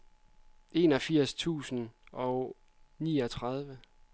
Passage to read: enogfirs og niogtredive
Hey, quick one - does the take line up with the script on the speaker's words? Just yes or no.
no